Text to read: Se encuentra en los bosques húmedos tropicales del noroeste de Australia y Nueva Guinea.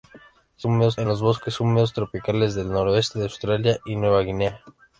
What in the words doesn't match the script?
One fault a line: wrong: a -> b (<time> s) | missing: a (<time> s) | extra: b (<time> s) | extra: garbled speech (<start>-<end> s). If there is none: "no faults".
wrong: encuentra -> húmedos (0.6 s)